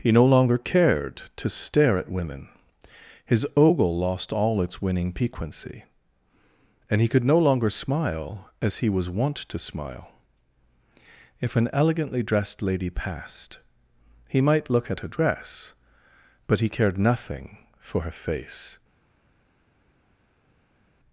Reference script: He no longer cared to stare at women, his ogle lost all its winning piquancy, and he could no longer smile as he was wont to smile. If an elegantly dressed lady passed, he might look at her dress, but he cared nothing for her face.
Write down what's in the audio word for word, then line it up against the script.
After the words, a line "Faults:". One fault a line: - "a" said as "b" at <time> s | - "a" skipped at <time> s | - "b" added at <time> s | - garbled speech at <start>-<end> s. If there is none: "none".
He no longer cared to stare at women, his ogle lost all its winning piquancy, and he could no longer smile as he was wont to smile. If an elegantly dressed lady passed, he might look at her dress, but he cared nothing for her face.
Faults:
none